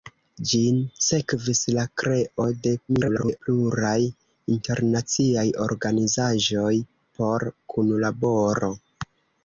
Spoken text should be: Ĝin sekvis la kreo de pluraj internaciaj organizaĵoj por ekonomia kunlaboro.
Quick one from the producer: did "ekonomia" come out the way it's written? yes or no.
no